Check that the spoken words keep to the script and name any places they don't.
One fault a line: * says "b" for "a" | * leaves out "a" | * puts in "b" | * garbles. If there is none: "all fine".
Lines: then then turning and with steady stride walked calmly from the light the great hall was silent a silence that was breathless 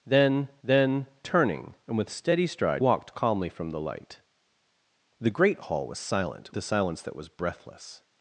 all fine